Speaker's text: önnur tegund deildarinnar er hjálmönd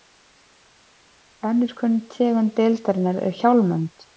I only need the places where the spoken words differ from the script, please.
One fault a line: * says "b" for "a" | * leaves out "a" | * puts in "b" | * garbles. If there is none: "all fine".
* puts in "kunn"